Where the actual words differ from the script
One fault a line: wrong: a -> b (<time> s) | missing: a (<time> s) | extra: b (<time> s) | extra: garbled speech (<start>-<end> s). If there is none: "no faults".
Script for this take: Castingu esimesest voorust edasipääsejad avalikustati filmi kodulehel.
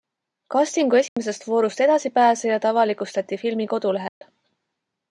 no faults